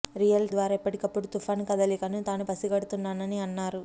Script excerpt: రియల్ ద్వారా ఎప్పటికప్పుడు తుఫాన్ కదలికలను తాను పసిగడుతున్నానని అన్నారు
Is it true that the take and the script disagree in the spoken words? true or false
false